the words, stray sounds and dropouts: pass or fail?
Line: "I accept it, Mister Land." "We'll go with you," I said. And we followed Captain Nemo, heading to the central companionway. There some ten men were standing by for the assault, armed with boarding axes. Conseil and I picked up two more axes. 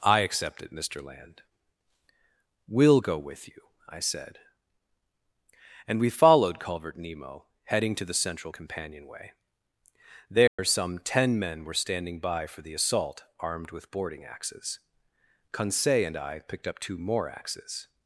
fail